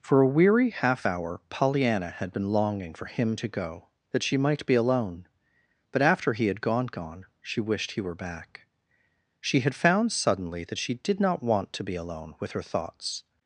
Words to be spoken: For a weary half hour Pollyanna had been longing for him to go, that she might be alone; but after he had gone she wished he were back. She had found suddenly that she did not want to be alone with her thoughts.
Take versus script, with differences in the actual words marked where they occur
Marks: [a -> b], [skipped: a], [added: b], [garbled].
For a weary half hour Pollyanna had been longing for him to go, that she might be alone; but after he had gone [added: gone] she wished he were back. She had found suddenly that she did not want to be alone with her thoughts.